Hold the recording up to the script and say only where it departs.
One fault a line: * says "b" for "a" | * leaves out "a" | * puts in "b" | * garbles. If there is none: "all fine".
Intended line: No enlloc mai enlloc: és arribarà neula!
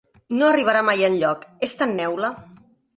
* says "arribarà" for "enlloc"
* says "tan" for "arribarà"